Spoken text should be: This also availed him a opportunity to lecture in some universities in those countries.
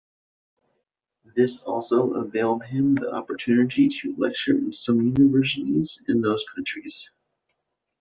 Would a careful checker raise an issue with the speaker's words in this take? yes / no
yes